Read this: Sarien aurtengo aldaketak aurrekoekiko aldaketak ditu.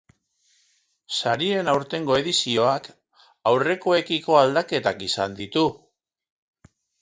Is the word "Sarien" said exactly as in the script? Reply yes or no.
yes